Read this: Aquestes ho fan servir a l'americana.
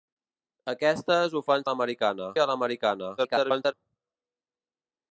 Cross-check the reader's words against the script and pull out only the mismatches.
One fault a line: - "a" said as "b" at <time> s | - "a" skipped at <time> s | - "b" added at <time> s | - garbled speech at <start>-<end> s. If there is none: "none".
- "servir" said as "l'americana" at 1.7 s
- garbled speech at 3.2-3.7 s